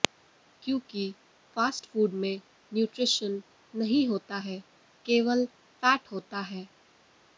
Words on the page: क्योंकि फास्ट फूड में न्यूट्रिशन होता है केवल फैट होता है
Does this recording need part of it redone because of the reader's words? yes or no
yes